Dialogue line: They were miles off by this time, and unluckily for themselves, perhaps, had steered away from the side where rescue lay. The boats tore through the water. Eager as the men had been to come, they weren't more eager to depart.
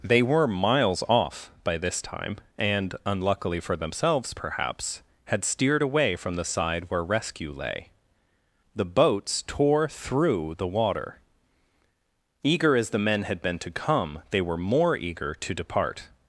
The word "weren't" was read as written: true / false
false